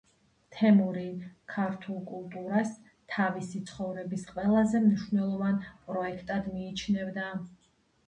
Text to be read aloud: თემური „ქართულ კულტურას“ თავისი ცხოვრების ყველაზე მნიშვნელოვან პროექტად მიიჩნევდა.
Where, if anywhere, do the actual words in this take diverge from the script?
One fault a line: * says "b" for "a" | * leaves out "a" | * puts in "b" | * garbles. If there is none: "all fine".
all fine